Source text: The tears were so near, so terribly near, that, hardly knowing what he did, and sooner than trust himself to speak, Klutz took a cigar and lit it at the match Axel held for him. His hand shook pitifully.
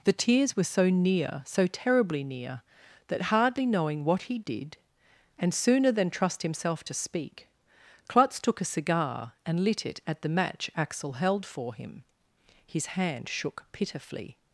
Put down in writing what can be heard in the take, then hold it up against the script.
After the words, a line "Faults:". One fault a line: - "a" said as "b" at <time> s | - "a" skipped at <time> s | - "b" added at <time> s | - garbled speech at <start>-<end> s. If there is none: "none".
The tears were so near, so terribly near, that, hardly knowing what he did, and sooner than trust himself to speak, Klutz took a cigar and lit it at the match Axel held for him. His hand shook pitifully.
Faults:
none